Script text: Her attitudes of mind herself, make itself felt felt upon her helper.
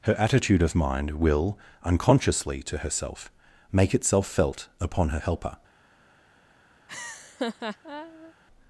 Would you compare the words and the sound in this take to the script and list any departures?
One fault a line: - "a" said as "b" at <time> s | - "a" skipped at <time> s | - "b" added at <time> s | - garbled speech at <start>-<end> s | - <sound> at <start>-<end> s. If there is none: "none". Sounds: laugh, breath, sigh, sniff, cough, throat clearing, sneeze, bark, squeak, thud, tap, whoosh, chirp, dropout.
- "attitudes" said as "attitude" at 0.1 s
- "will unconsciously to" added at 1.1 s
- "felt" skipped at 4.7 s
- laugh at 6.9-8.3 s